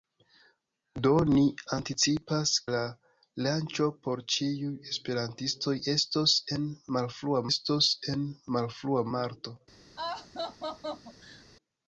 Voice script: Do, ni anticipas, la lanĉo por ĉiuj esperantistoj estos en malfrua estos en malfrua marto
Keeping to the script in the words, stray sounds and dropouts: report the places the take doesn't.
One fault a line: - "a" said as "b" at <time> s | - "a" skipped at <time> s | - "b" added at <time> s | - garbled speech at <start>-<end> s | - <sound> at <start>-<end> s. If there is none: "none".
- laugh at 10.0-11.5 s